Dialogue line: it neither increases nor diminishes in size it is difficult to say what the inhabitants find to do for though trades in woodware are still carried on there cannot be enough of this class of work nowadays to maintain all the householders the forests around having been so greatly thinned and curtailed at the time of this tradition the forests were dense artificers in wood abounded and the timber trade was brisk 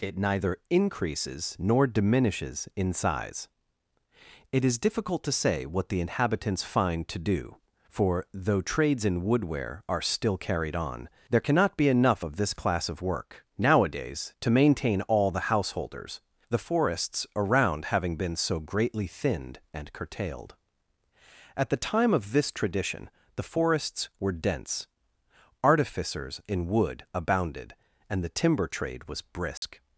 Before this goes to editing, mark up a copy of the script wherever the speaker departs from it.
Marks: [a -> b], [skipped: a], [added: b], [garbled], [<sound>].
it neither increases nor diminishes in size it is difficult to say what the inhabitants find to do for though trades in woodware are still carried on there cannot be enough of this class of work nowadays to maintain all the householders the forests around having been so greatly thinned and curtailed at the time of this tradition the forests were dense artificers in wood abounded and the timber trade was brisk [dropout]